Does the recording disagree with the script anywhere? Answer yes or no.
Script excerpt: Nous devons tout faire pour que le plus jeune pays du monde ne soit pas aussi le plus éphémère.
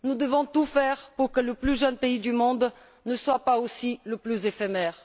no